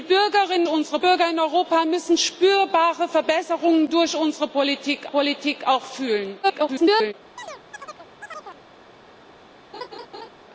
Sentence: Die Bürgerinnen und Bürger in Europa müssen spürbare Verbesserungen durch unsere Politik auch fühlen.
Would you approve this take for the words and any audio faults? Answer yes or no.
no